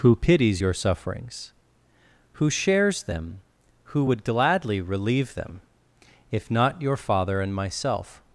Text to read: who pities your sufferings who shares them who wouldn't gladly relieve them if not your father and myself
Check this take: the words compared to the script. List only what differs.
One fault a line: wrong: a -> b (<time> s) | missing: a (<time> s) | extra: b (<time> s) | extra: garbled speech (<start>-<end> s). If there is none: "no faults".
wrong: wouldn't -> would (4.0 s)